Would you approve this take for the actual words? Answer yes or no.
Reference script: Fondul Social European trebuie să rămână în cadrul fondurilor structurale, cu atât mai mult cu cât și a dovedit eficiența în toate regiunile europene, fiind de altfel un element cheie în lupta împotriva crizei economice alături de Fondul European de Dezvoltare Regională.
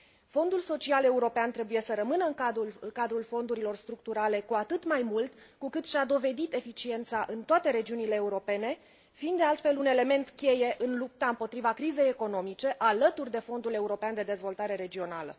yes